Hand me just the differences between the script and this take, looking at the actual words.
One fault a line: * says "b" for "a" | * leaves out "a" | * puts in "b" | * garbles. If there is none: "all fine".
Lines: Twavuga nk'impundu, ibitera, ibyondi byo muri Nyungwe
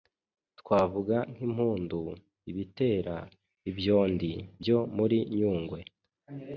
all fine